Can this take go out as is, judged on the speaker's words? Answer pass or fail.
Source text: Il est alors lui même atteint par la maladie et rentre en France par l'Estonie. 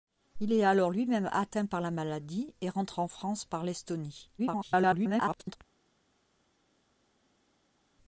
fail